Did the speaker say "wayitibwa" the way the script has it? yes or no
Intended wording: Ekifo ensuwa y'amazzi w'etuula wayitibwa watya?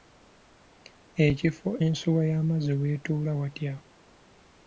no